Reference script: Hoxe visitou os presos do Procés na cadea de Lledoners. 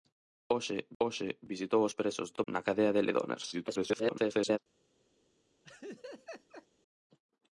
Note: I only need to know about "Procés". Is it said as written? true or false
false